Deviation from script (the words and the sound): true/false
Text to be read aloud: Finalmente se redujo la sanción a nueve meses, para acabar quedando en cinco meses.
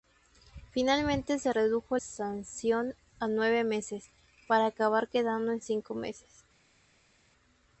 true